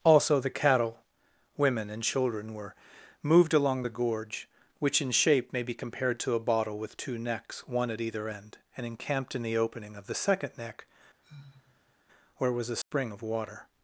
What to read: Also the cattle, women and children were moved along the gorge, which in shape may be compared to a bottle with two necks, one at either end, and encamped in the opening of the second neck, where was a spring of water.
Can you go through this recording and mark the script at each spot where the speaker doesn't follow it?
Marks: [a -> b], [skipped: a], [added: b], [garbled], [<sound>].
Also the cattle, women and children were moved along the gorge, which in shape may be compared to a bottle with two necks, one at either end, and encamped in the opening of the second neck, [sigh] where was a spring [dropout] of water.